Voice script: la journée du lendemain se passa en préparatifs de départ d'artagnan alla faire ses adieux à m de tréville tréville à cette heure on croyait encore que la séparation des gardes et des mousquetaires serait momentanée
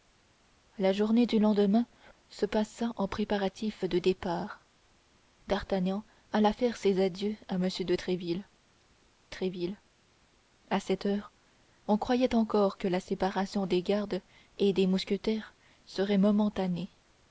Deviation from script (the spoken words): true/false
false